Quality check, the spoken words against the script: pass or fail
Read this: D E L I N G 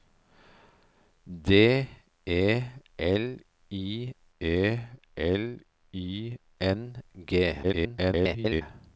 fail